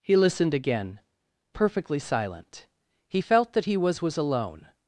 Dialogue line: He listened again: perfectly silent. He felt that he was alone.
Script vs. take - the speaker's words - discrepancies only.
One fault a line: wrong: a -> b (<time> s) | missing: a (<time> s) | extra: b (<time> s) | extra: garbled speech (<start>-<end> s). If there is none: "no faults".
extra: was (4.0 s)